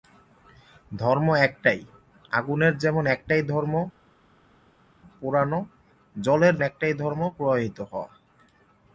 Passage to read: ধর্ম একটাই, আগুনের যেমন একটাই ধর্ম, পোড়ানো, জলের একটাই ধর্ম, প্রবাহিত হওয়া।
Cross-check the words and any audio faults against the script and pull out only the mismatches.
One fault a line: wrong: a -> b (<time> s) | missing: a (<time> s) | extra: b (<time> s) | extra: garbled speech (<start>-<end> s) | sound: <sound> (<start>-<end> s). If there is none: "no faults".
no faults